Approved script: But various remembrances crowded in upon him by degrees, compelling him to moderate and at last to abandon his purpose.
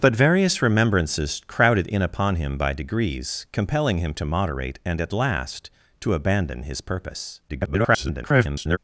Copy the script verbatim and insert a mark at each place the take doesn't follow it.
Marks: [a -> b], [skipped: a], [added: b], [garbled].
But various remembrances crowded in upon him by degrees, compelling him to moderate and at last to abandon his purpose. [garbled]